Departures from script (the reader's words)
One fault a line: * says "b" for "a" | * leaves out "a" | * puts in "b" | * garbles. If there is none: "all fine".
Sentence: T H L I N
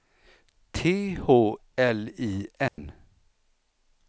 all fine